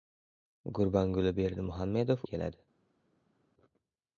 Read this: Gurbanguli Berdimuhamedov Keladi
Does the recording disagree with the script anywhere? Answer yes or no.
no